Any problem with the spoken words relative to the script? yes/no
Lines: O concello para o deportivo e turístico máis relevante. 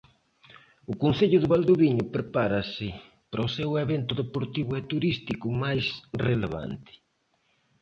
yes